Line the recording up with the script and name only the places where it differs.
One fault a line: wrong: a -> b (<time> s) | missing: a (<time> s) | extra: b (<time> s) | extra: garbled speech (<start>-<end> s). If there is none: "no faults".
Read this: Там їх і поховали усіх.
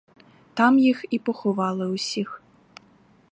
no faults